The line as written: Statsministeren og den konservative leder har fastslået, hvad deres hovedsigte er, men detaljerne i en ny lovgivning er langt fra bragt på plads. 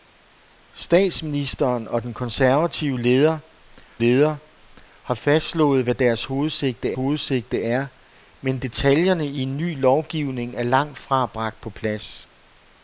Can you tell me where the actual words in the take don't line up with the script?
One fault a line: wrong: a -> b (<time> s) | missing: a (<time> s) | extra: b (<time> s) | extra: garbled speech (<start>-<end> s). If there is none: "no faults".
extra: leder (4.0 s)
extra: hovedsigte (6.9 s)